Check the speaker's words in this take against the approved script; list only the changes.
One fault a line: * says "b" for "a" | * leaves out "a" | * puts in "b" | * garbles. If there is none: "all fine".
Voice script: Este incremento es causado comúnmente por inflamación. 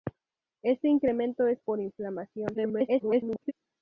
* leaves out "causado comúnmente"
* garbles